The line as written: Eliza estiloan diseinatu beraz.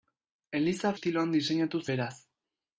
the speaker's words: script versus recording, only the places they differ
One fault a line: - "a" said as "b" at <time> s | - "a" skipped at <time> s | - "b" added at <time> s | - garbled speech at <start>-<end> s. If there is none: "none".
none